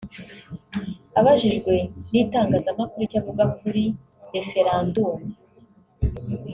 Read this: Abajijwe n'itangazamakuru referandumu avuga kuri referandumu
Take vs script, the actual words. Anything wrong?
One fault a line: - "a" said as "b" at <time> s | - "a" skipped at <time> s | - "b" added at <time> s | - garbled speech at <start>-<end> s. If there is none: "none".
- "referandumu" said as "icyo" at 3.0 s